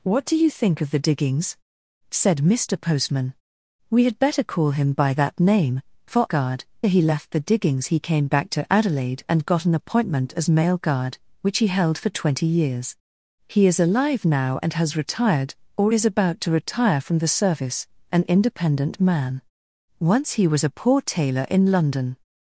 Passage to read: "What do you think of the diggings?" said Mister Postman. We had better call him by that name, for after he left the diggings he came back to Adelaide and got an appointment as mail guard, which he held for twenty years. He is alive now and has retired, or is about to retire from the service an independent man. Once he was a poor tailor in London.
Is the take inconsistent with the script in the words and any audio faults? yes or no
yes